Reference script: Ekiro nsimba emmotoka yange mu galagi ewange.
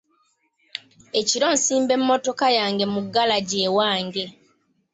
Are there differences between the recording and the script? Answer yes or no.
no